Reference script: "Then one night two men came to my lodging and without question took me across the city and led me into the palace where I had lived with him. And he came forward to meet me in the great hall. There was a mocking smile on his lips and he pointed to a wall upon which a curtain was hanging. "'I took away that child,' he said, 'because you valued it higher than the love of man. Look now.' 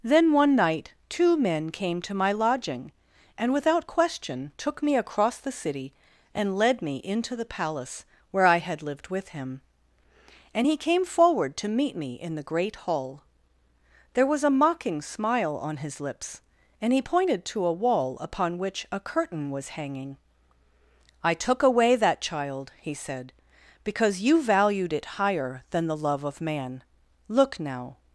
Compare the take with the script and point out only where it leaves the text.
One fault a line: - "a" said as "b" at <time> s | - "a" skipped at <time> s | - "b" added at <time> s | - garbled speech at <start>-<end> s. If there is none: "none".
none